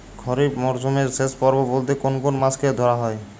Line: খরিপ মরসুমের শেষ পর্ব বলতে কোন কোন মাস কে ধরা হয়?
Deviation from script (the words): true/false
false